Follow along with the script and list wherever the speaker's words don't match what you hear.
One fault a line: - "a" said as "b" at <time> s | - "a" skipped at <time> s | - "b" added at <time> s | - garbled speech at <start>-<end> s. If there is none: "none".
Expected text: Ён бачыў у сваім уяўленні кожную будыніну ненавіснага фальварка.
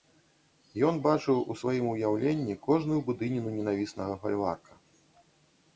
none